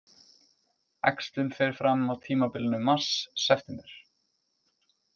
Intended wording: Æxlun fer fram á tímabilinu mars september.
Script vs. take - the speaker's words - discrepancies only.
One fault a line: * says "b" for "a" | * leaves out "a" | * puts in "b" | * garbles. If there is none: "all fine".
all fine